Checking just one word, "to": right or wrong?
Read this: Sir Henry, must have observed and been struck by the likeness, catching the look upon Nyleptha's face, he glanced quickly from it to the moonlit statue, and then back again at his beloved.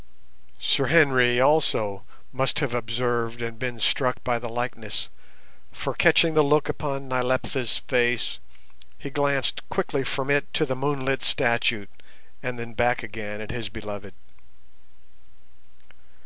right